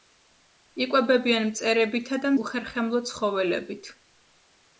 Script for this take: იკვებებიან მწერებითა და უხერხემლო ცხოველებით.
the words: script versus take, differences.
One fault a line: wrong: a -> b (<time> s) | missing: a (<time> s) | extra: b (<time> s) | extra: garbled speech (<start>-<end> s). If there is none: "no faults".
no faults